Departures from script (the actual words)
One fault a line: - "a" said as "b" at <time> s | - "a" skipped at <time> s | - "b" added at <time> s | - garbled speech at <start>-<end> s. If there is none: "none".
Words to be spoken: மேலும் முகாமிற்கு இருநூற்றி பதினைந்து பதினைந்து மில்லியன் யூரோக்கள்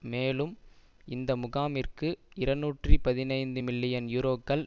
- "இந்த" added at 1.1 s
- "பதினைந்து" skipped at 3.6 s